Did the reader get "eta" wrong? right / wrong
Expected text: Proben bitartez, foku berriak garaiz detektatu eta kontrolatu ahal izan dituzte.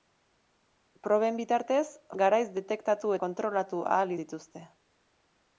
wrong